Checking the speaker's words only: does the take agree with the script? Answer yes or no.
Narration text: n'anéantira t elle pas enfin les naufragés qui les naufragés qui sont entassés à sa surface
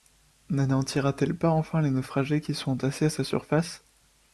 no